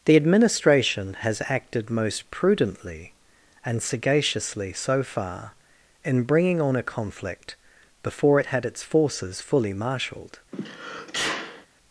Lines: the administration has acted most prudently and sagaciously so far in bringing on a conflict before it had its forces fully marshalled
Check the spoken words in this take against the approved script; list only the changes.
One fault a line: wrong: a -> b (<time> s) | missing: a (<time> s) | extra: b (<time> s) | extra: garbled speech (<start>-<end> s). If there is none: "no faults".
no faults